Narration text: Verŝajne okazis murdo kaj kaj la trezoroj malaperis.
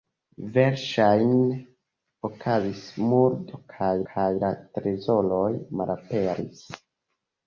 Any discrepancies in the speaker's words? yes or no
no